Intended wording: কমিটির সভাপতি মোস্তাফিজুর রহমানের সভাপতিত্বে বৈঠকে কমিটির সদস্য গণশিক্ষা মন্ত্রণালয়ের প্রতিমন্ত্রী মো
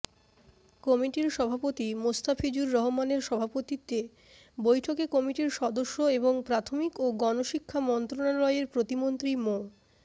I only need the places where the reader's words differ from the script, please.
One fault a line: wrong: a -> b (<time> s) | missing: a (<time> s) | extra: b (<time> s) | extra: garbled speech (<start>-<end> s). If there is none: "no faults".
extra: এবং প্রাথমিক ও (6.2 s)